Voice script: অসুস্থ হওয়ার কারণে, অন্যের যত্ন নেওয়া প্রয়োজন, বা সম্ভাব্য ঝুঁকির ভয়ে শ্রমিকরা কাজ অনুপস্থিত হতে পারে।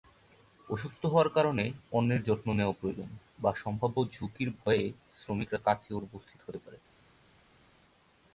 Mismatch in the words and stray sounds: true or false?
false